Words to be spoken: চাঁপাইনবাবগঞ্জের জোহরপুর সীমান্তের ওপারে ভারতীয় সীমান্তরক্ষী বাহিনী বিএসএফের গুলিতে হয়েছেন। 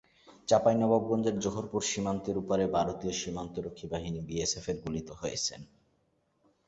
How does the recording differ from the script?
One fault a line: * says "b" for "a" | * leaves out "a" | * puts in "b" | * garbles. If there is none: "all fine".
all fine